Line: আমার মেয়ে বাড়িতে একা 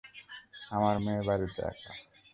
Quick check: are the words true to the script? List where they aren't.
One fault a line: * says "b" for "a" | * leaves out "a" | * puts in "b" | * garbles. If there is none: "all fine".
all fine